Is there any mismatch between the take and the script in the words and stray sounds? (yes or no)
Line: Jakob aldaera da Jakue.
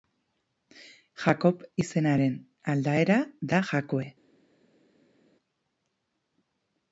yes